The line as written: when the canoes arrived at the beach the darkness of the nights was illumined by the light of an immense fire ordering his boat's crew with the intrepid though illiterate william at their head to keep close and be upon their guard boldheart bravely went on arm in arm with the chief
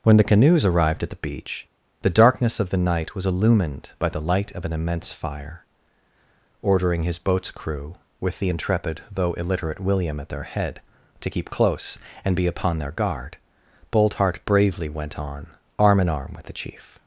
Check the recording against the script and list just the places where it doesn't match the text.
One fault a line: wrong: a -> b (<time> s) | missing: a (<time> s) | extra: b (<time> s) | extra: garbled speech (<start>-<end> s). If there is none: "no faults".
wrong: nights -> night (2.8 s)